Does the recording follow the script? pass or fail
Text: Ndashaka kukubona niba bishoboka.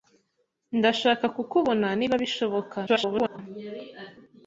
fail